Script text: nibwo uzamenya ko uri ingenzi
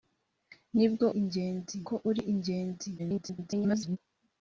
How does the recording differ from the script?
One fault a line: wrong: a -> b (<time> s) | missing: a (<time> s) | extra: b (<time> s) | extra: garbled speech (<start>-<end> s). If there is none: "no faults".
wrong: uzamenya -> ingenzi (1.2 s)
extra: garbled speech (3.0-4.0 s)